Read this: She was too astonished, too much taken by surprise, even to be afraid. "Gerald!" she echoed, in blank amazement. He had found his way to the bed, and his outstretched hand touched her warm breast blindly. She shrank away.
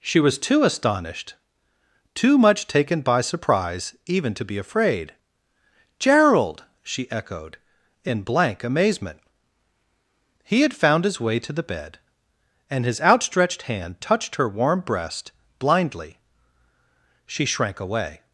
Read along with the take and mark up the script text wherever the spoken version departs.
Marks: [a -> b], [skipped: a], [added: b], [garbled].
She was too astonished, too much taken by surprise, even to be afraid. "Gerald!" she echoed, in blank amazement. He had found his way to the bed, and his outstretched hand touched her warm breast blindly. She shrank away.